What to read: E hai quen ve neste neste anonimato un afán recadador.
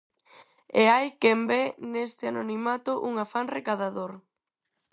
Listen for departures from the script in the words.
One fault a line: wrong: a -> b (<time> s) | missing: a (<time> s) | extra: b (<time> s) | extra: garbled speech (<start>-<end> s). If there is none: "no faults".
missing: neste (2.2 s)